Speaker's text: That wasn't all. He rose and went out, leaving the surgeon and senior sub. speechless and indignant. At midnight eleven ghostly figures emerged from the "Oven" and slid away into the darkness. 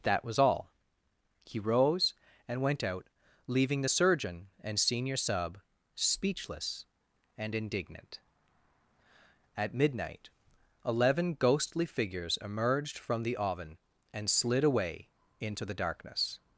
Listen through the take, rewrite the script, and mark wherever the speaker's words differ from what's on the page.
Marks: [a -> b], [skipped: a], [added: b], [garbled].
That [wasn't -> was] all. He rose and went out, leaving the surgeon and senior sub. speechless and indignant. At midnight eleven ghostly figures emerged from the "Oven" and slid away into the darkness.